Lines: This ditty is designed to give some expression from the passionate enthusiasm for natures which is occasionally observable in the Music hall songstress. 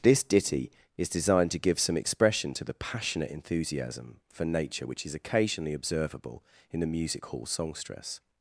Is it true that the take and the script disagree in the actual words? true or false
true